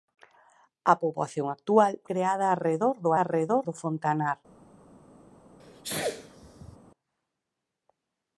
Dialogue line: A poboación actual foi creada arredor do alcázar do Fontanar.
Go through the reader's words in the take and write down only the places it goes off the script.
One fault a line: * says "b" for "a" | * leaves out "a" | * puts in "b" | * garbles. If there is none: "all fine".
* leaves out "foi"
* says "arredor" for "alcázar"